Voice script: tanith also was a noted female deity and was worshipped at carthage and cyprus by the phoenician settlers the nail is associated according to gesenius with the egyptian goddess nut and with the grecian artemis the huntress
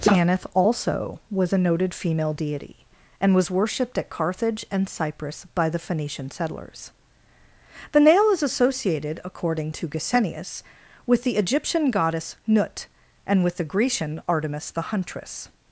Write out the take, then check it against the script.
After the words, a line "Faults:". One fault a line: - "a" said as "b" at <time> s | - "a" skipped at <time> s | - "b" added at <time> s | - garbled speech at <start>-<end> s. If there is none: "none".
tanith also was a noted female deity and was worshipped at carthage and cyprus by the phoenician settlers the nail is associated according to gesenius with the egyptian goddess nut and with the grecian artemis the huntress
Faults:
none